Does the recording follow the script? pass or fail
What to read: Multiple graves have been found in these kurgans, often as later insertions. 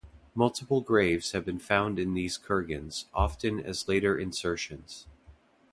pass